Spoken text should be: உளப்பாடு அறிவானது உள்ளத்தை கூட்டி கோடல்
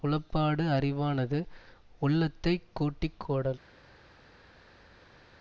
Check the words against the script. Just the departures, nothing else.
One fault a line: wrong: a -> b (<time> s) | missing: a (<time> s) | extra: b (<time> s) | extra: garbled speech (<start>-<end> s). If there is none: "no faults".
no faults